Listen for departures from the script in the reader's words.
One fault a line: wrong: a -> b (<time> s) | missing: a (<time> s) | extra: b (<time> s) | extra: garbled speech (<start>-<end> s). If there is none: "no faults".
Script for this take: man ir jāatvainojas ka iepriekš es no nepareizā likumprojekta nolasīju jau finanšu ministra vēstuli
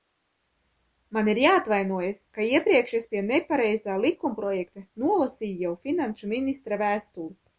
wrong: no -> pie (3.1 s)